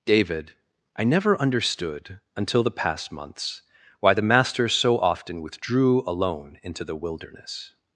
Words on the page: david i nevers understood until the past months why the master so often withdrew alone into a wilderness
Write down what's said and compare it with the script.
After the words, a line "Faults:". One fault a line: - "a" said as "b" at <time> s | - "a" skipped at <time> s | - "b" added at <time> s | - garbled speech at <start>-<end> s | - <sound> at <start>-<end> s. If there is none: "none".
david i never understood until the past months why the master so often withdrew alone into the wilderness
Faults:
- "nevers" said as "never" at 1.0 s
- "a" said as "the" at 6.8 s